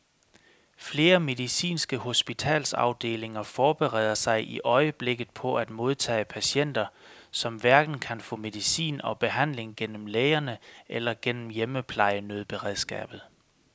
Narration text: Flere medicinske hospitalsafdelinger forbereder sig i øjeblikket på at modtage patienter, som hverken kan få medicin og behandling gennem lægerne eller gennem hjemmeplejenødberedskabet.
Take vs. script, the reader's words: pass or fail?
pass